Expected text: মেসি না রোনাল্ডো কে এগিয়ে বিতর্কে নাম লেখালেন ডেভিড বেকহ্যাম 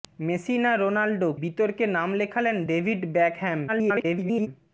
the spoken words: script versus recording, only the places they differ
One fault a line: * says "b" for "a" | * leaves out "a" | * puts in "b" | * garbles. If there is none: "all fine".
* leaves out "কে এগিয়ে"
* garbles